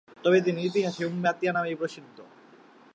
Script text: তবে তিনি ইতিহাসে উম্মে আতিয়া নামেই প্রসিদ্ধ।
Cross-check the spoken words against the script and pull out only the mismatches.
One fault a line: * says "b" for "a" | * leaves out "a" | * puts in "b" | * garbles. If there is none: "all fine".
all fine